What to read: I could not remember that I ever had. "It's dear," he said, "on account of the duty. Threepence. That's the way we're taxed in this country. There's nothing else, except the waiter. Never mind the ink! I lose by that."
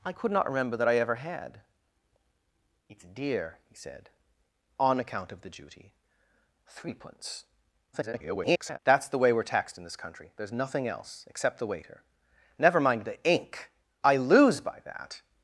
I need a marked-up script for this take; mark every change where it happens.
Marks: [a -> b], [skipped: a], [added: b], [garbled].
I could not remember that I ever had. "It's dear," he said, "on account of the duty. Threepence. [garbled] That's the way we're taxed in this country. There's nothing else, except the waiter. Never mind the ink! I lose by that."